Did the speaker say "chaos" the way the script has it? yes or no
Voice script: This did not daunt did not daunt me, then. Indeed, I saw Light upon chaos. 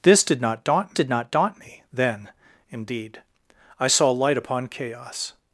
yes